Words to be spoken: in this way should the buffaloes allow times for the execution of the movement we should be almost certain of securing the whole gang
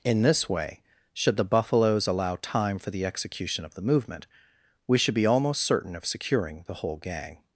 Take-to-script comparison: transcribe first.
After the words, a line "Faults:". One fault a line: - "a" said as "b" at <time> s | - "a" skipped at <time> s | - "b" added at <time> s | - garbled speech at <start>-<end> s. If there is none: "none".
in this way should the buffaloes allow time for the execution of the movement we should be almost certain of securing the whole gang
Faults:
- "times" said as "time" at 2.4 s